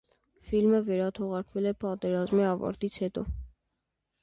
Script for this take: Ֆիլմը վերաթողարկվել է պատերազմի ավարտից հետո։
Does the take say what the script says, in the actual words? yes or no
yes